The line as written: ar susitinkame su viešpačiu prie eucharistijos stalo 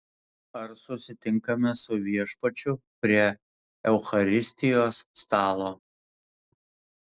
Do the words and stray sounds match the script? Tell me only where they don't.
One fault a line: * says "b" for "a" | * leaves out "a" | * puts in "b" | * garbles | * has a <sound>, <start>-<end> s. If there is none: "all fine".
all fine